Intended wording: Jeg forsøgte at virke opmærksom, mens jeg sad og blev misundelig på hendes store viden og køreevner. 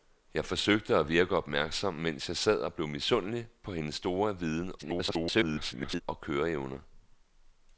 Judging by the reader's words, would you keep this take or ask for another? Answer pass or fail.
fail